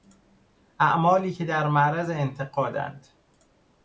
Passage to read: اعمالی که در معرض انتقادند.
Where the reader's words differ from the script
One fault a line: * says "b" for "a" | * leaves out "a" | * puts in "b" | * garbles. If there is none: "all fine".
all fine